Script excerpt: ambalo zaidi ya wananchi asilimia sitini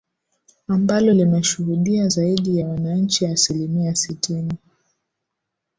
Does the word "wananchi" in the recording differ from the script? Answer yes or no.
no